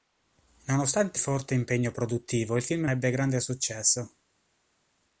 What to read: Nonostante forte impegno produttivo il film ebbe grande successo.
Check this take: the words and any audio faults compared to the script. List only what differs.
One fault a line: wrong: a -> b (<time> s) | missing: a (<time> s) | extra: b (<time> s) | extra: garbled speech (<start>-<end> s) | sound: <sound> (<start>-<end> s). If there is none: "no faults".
no faults